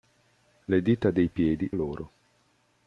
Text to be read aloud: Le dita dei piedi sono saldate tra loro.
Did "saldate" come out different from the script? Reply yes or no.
yes